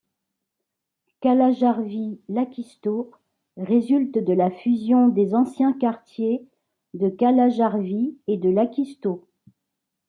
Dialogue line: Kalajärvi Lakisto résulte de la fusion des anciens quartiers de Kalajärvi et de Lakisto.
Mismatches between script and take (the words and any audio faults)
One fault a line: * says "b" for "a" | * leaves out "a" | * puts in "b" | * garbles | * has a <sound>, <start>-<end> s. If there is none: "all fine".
all fine